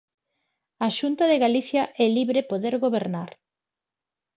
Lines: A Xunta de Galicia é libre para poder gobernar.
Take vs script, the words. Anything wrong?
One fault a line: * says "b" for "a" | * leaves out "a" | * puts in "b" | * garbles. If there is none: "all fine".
* leaves out "para"